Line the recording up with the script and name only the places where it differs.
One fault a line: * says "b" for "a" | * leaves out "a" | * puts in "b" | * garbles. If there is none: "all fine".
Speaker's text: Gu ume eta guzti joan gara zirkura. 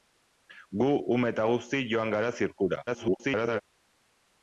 * garbles